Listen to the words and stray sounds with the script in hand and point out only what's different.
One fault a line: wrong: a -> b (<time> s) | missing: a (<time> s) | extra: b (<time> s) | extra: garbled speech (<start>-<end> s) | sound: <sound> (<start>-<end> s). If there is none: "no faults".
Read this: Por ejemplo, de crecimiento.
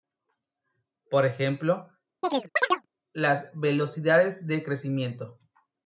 sound: chirp (2.2-2.9 s)
extra: las velocidades (3.1 s)